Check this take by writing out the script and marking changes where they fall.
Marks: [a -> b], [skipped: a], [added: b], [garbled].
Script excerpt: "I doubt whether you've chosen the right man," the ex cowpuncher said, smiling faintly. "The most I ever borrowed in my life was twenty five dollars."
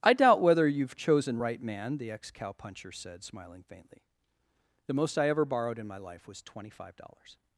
"I doubt whether you've chosen [skipped: the] right man," the ex cowpuncher said, smiling faintly. "The most I ever borrowed in my life was twenty five dollars."